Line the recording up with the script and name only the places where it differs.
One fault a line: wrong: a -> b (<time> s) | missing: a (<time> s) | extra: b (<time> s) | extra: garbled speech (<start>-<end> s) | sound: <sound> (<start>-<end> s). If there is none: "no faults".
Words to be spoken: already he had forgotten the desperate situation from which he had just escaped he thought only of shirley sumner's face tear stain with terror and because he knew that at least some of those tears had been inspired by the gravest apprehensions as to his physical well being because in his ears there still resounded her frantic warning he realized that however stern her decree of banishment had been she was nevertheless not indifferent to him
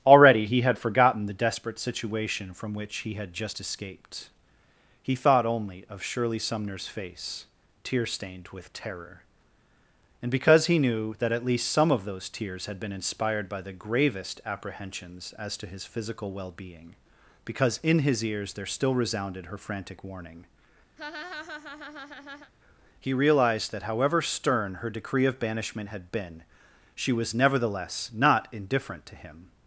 wrong: stain -> stained (8.1 s)
sound: laugh (21.0-22.5 s)